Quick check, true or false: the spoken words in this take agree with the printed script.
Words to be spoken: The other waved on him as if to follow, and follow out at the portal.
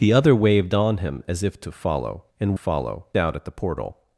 true